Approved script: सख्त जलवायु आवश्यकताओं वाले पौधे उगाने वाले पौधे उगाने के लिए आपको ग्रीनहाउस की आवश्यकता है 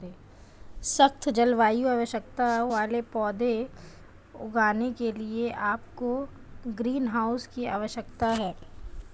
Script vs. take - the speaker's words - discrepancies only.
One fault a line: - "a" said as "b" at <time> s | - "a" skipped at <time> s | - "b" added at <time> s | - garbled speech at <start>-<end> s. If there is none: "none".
- "वाले पौधे उगाने" skipped at 4.9 s